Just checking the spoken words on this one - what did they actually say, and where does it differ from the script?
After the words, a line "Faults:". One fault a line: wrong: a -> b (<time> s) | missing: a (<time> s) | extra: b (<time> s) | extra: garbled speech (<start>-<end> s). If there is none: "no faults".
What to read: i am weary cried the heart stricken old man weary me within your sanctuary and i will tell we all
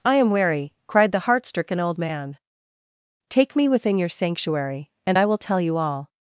i am weary cried the heart stricken old man take me within your sanctuary and i will tell you all
Faults:
wrong: weary -> take (3.3 s)
wrong: we -> you (5.6 s)